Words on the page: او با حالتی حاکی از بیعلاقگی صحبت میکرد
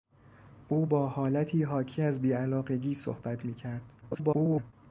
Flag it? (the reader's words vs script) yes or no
yes